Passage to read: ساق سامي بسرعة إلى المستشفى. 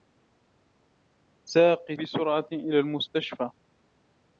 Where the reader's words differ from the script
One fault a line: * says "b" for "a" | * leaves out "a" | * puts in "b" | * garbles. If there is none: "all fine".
* leaves out "سامي"